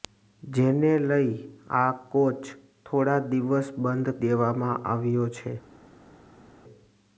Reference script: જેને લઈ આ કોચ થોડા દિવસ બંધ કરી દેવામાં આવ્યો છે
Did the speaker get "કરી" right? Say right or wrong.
wrong